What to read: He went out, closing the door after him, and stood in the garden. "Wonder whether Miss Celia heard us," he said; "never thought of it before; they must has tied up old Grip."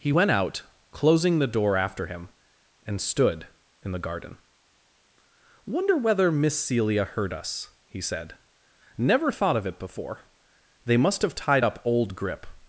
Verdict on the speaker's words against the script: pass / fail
fail